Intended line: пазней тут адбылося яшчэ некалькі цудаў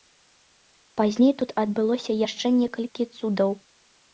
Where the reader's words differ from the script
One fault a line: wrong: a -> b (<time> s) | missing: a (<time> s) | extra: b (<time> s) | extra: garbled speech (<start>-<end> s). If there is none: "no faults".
no faults